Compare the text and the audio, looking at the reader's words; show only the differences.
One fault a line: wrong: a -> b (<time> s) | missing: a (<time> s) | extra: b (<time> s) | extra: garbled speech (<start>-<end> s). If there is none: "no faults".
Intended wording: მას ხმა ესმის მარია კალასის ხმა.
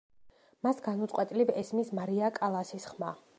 wrong: ხმა -> განუწყვეტლივ (0.9 s)